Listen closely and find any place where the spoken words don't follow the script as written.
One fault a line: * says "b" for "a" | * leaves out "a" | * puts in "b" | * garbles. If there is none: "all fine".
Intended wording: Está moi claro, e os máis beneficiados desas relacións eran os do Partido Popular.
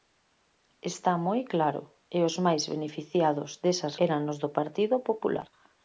* leaves out "relacións"